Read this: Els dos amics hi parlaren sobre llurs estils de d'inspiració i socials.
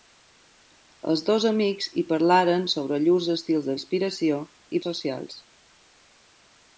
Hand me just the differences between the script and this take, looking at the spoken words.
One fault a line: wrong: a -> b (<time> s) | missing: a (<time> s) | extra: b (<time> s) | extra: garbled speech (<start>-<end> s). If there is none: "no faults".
no faults